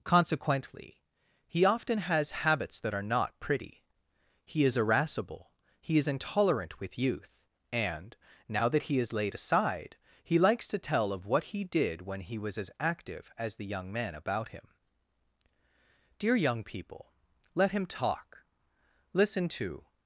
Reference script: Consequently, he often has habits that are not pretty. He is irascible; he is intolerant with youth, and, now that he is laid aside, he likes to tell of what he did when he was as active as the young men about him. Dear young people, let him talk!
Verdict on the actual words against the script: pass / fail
fail